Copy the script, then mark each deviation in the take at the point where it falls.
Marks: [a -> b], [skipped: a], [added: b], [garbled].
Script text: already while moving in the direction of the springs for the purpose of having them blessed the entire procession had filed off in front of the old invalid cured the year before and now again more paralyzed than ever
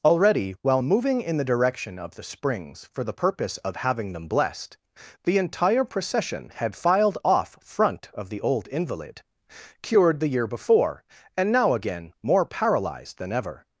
already while moving in the direction of the springs for the purpose of having them blessed the entire procession had filed off [skipped: in] front of the old invalid cured the year before and now again more paralyzed than ever